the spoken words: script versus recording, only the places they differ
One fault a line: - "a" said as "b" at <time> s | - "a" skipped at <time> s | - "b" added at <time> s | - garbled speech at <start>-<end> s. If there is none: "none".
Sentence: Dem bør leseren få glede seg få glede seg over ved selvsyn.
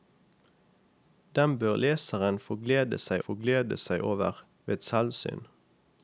none